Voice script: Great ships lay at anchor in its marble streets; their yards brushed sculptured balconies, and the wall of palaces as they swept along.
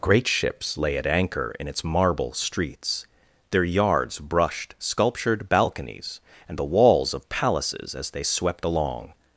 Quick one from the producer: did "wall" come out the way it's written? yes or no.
no